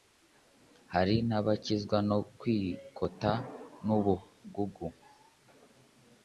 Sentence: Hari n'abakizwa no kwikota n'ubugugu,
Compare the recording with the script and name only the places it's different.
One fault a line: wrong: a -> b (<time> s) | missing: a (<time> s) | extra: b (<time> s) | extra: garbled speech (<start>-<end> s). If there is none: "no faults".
no faults